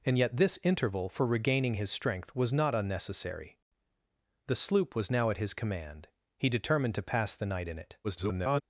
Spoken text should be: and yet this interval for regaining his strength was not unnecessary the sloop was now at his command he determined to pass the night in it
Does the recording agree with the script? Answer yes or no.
no